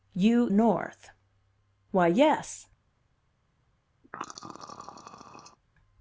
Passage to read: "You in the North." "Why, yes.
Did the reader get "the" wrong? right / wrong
wrong